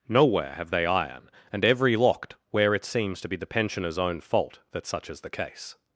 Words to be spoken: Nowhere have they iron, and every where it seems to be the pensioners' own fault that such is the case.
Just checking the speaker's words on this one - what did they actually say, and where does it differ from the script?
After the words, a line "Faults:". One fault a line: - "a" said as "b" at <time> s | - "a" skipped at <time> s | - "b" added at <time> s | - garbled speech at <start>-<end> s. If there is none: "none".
Nowhere have they iron, and every locked where it seems to be the pensioners' own fault that such is the case.
Faults:
- "locked" added at 1.9 s